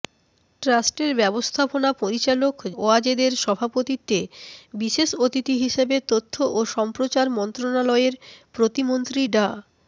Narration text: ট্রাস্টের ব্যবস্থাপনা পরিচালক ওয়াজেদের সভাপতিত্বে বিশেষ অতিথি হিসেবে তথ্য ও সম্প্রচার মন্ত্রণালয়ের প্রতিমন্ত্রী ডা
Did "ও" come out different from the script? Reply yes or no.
no